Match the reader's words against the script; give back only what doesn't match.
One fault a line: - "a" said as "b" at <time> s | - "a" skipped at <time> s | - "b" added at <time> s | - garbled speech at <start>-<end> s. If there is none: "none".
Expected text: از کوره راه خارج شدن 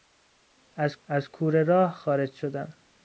- "از" added at 1.1 s